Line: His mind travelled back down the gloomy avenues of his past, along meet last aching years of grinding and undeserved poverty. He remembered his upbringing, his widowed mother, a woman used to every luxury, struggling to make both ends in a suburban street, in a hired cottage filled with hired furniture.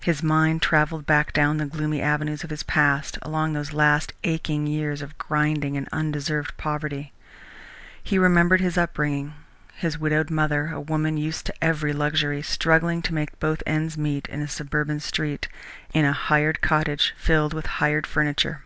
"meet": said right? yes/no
no